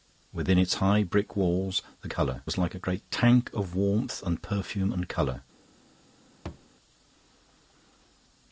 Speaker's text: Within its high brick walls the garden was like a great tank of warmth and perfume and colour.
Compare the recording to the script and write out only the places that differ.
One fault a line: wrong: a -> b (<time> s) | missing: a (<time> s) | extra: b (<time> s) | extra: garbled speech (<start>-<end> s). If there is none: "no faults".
wrong: garden -> colour (2.1 s)